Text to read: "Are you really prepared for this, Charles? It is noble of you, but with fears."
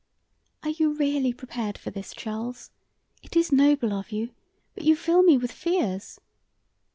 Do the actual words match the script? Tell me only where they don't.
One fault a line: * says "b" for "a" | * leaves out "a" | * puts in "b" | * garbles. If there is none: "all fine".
* puts in "you fill me"